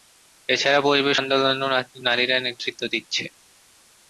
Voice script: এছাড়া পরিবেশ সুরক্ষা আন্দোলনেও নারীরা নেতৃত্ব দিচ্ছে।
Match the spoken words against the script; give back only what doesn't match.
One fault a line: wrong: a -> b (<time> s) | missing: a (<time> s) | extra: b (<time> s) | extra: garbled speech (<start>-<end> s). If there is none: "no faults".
missing: সুরক্ষা (1.2 s)